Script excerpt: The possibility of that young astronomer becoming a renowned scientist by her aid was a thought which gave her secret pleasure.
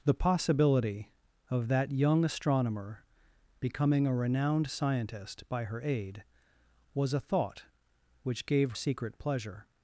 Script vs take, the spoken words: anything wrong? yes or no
yes